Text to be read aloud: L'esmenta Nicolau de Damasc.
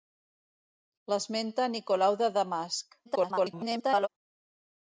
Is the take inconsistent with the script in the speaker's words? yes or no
yes